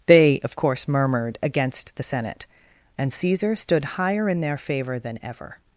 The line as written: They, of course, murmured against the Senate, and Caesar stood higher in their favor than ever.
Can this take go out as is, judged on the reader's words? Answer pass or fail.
pass